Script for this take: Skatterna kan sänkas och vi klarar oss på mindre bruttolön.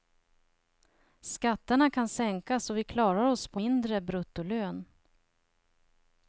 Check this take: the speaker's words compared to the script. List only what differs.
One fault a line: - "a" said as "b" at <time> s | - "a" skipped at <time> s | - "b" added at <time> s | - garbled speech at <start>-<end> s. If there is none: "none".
none